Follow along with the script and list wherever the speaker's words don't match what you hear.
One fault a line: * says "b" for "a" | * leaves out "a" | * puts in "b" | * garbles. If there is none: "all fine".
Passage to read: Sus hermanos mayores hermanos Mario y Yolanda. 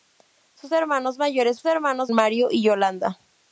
all fine